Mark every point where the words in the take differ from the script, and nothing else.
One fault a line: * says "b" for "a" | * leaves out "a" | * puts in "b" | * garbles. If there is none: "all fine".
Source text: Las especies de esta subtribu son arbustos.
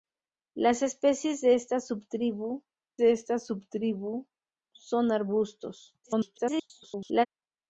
* puts in "de esta subtribu"
* garbles